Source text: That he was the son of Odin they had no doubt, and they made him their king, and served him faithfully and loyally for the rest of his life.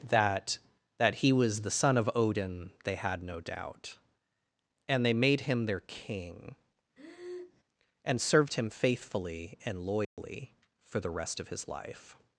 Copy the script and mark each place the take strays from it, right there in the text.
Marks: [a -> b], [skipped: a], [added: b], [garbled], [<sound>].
That [added: that] he was the son of Odin they had no doubt, and they made him their king, [breath] and served him faithfully and loyally [dropout] for the rest of his life.